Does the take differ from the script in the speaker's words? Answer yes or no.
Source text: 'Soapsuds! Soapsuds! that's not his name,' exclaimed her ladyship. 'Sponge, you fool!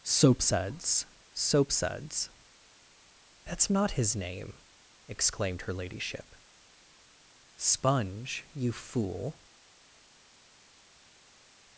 no